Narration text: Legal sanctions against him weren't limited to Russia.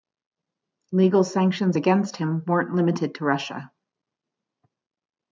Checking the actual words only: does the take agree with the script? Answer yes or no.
yes